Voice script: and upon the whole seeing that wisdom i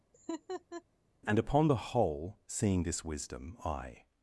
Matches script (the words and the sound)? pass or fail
fail